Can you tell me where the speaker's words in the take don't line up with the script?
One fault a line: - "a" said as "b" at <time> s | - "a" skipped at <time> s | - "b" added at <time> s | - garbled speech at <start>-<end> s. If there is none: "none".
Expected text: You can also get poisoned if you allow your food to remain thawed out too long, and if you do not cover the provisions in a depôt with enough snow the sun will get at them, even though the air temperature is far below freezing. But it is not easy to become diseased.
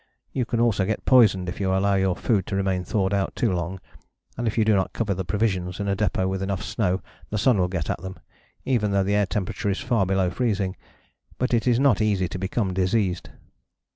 none